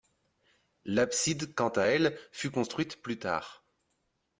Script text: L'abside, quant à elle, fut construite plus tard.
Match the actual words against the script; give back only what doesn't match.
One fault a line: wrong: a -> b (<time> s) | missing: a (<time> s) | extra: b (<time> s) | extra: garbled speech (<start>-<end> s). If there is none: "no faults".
no faults